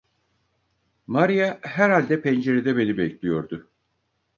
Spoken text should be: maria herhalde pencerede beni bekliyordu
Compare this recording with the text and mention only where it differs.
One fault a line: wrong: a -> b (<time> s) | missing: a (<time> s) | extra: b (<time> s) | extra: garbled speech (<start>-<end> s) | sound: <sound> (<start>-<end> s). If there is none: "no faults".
no faults